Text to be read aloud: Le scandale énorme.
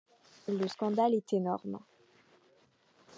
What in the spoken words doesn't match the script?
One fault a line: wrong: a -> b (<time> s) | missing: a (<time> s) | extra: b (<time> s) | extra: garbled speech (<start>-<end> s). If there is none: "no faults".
extra: est (1.1 s)